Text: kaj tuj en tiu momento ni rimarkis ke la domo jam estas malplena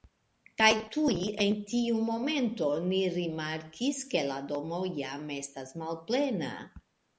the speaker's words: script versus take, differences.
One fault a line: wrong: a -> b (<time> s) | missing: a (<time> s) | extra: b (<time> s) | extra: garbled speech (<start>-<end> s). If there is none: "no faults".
no faults